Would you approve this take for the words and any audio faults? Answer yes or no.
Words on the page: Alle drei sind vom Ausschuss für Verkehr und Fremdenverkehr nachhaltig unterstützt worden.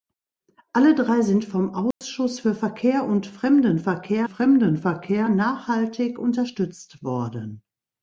no